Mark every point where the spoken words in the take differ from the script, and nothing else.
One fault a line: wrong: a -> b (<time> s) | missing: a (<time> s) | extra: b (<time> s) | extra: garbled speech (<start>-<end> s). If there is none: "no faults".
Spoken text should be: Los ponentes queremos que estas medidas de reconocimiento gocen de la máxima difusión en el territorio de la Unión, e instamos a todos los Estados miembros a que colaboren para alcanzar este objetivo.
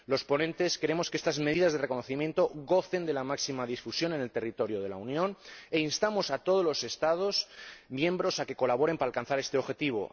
no faults